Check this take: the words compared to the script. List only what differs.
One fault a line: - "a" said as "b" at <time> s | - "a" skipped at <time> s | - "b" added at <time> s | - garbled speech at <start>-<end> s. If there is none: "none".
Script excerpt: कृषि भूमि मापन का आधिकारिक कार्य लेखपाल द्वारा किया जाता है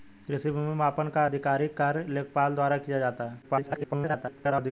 - garbled speech at 3.4-4.7 s